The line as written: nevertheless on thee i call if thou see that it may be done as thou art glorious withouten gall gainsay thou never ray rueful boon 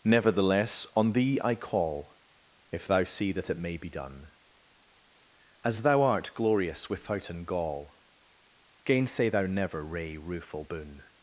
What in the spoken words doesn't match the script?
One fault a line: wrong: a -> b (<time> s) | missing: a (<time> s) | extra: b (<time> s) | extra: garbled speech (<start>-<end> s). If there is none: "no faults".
no faults